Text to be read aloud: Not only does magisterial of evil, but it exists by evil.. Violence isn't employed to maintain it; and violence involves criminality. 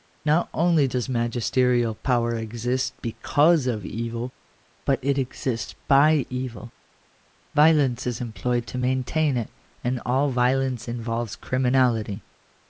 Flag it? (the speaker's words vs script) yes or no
yes